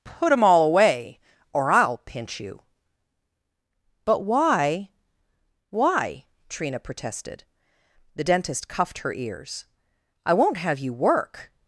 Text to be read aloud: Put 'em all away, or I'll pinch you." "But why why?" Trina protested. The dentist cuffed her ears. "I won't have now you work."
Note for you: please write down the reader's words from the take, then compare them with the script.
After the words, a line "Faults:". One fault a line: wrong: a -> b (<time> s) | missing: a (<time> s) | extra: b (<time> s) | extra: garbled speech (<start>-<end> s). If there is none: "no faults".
Put 'em all away, or I'll pinch you." "But why why?" Trina protested. The dentist cuffed her ears. "I won't have you work."
Faults:
missing: now (10.8 s)